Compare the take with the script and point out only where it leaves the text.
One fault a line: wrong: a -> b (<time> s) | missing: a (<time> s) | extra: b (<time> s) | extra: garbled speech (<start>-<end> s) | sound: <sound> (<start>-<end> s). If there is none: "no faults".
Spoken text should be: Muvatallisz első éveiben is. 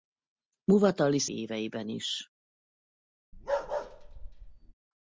missing: első (1.3 s)
sound: bark (3.3-4.7 s)